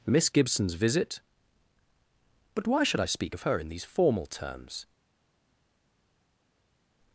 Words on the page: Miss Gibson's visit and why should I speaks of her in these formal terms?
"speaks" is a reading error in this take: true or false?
true